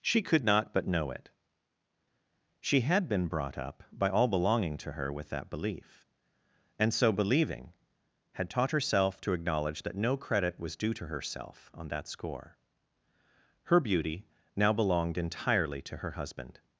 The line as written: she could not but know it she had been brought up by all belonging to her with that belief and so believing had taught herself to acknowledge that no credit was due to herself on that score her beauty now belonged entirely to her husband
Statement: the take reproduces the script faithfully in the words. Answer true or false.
true